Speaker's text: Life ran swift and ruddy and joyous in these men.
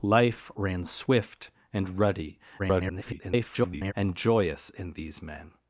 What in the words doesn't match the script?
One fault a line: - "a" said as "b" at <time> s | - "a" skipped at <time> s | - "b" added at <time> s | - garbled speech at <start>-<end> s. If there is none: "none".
- garbled speech at 2.6-3.9 s